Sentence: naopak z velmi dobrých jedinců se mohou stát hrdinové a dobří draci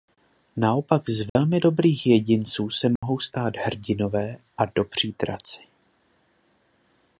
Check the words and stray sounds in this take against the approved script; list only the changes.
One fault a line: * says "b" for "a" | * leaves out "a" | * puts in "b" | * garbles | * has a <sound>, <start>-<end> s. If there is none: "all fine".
* has a dropout, 1.3-1.4 s
* has a dropout, 3.0-3.0 s